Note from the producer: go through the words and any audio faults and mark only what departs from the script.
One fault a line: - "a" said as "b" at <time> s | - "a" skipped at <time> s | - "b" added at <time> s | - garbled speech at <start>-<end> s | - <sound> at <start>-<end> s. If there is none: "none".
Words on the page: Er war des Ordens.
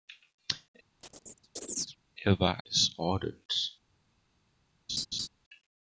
- chirp at 1.0-2.0 s
- laugh at 4.9-5.3 s